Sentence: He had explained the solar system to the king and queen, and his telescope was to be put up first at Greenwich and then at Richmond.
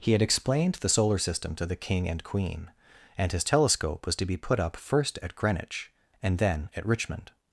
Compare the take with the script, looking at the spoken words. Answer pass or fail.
pass